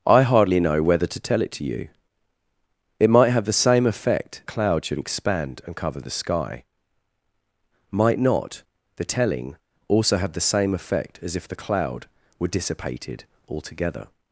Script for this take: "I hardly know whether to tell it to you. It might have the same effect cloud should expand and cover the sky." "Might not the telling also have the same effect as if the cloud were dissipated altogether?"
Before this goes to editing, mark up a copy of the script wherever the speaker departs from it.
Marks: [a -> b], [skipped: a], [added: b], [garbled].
"I hardly know whether to tell it to you. It might have the same effect cloud should expand and cover the sky." "Might not the telling also have the same effect as if the cloud were dissipated altogether?"